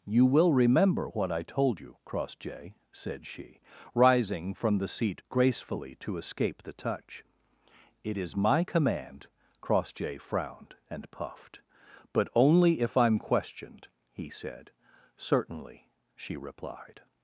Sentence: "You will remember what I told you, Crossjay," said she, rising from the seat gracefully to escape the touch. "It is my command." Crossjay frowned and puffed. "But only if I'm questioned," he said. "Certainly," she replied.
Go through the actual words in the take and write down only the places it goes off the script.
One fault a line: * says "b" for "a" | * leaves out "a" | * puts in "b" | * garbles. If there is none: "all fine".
all fine